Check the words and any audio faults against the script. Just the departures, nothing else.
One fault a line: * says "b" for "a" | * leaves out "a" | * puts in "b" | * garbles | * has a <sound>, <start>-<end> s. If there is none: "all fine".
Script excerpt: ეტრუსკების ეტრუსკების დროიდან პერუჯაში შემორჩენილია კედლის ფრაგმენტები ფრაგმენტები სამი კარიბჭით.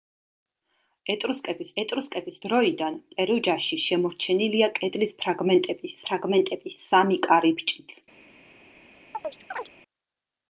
* has a chirp, 9.1-9.7 s